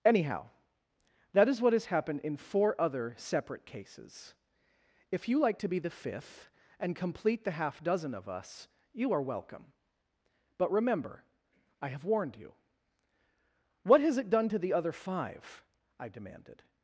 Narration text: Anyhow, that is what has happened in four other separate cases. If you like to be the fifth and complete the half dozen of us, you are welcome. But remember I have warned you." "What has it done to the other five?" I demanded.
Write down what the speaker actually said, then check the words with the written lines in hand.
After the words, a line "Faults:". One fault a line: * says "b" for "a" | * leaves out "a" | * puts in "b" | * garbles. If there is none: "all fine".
Anyhow, that is what has happened in four other separate cases. If you like to be the fifth and complete the half dozen of us, you are welcome. But remember I have warned you." "What has it done to the other five?" I demanded.
Faults:
all fine